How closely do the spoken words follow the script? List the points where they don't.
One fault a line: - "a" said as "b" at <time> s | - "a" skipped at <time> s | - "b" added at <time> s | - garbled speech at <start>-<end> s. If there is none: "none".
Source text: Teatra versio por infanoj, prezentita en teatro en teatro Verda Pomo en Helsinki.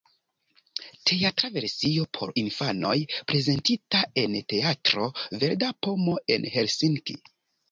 - "en teatro" skipped at 5.1 s